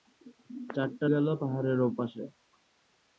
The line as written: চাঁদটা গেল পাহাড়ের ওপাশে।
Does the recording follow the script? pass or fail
pass